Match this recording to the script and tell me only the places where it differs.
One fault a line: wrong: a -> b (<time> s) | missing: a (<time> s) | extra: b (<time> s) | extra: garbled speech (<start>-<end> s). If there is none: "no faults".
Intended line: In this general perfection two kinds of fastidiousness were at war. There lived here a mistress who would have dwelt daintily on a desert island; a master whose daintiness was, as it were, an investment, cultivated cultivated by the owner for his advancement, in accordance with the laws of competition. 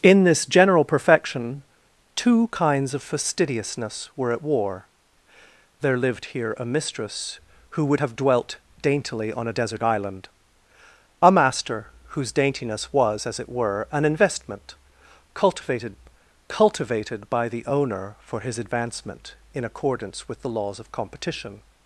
no faults